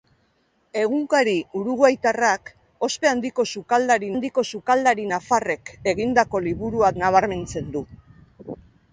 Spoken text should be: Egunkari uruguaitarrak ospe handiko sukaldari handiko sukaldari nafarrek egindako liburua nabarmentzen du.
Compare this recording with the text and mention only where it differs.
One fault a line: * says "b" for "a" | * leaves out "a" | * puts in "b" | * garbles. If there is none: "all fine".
all fine